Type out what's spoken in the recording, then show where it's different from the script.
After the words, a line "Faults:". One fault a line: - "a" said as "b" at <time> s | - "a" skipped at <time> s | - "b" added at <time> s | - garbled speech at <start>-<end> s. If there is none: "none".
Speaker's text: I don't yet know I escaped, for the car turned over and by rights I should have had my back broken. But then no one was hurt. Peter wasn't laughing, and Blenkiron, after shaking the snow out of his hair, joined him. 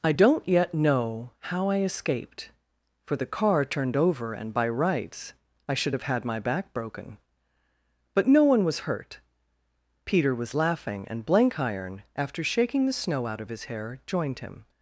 I don't yet know how I escaped, for the car turned over and by rights I should have had my back broken. But no one was hurt. Peter was laughing, and Blenkiron, after shaking the snow out of his hair, joined him.
Faults:
- "how" added at 1.4 s
- "then" skipped at 8.3 s
- "wasn't" said as "was" at 10.4 s